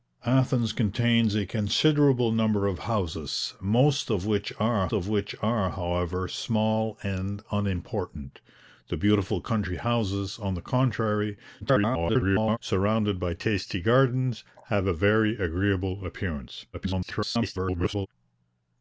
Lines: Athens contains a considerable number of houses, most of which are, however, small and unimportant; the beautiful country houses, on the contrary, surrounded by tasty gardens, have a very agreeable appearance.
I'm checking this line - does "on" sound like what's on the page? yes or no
yes